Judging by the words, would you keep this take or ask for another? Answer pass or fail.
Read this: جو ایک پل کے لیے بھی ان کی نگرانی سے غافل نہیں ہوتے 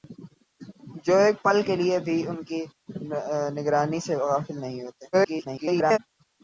fail